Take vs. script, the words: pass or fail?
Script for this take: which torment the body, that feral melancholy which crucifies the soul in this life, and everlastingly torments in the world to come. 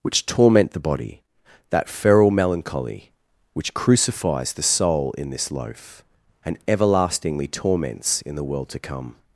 fail